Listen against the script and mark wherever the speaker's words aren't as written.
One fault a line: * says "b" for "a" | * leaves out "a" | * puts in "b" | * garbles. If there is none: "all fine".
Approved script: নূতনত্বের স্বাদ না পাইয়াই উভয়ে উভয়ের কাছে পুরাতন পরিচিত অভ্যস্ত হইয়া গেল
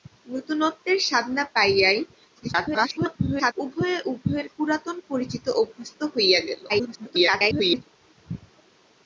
* garbles
* leaves out "কাছে"
* garbles